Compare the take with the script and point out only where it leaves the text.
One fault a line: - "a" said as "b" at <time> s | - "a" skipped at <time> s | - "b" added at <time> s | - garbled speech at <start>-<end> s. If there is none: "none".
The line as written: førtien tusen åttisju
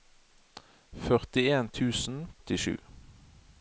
none